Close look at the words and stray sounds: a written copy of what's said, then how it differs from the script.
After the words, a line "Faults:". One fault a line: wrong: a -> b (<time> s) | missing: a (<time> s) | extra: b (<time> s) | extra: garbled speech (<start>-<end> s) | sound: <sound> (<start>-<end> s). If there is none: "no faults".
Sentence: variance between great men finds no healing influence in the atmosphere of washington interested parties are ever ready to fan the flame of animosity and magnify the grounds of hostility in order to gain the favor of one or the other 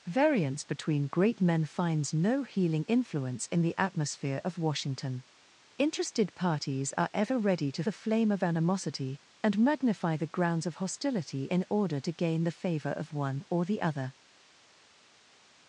variance between great men finds no healing influence in the atmosphere of washington interested parties are ever ready to the flame of animosity and magnify the grounds of hostility in order to gain the favor of one or the other
Faults:
missing: fan (7.8 s)